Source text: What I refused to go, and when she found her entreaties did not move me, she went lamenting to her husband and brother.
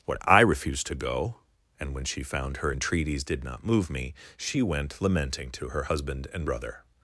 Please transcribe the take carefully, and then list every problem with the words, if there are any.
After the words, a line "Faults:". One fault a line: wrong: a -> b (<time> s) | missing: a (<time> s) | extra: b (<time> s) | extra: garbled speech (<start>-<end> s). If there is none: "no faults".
What I refused to go, and when she found her entreaties did not move me, she went lamenting to her husband and brother.
Faults:
no faults